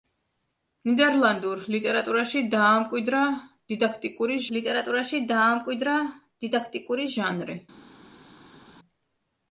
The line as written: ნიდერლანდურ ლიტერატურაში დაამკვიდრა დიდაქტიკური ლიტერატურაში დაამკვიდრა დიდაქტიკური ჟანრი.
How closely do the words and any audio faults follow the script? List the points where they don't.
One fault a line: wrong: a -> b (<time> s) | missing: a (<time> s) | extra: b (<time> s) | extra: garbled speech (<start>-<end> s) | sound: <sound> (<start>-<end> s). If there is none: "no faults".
no faults